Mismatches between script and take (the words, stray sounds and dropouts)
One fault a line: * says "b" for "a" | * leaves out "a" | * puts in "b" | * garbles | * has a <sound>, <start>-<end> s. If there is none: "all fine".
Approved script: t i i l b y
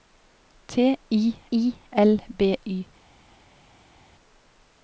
all fine